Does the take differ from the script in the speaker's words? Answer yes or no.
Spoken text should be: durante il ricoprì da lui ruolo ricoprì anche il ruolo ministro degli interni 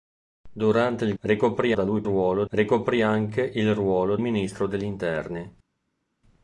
no